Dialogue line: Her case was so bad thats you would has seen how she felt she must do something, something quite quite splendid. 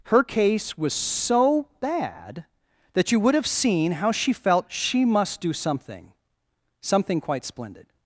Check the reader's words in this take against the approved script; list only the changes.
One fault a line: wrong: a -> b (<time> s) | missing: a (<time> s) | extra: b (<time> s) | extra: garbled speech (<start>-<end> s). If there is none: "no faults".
wrong: thats -> that (2.9 s)
wrong: has -> have (3.4 s)
missing: quite (7.5 s)